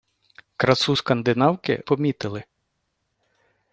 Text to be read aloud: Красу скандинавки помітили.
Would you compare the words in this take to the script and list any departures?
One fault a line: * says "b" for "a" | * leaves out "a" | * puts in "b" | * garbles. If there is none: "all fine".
all fine